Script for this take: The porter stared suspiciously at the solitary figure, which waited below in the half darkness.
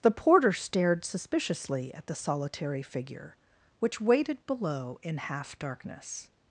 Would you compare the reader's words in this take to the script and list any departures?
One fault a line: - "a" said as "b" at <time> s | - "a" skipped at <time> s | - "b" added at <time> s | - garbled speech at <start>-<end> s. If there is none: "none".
- "the" skipped at 5.2 s